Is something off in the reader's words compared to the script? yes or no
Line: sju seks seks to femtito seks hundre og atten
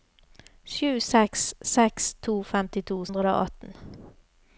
yes